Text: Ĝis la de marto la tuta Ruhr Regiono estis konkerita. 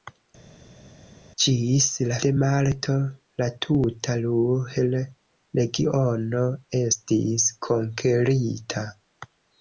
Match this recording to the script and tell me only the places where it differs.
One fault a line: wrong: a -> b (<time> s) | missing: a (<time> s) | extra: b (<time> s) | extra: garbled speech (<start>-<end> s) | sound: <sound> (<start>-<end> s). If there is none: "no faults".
no faults